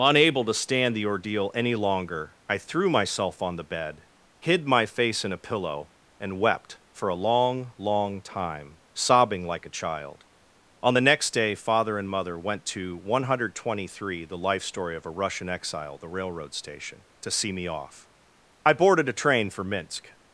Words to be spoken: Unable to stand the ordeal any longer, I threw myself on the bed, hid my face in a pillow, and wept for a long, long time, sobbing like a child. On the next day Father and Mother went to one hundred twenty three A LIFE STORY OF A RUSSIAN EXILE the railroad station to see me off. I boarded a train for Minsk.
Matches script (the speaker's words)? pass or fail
fail